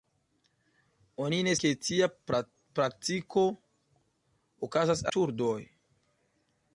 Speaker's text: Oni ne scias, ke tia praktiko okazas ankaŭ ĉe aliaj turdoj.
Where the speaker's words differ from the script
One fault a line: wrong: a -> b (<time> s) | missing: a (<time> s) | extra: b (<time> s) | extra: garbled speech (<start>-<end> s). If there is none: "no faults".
missing: scias (1.5 s)
missing: ankaŭ ĉe aliaj (5.1 s)